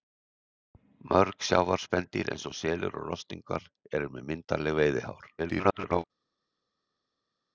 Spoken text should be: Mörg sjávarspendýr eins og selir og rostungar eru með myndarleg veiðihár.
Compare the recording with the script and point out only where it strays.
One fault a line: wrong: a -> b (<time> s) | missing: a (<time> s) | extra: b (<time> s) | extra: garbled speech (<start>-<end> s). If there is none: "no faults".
extra: garbled speech (5.4-6.0 s)